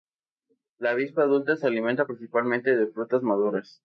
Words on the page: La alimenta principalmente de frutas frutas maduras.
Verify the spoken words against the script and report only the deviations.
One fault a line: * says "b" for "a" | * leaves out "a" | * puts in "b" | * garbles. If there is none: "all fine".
* puts in "avispa adulta se"
* leaves out "frutas"